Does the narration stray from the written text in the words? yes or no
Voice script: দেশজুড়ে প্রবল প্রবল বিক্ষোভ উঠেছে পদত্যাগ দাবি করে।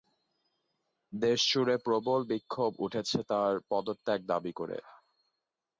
yes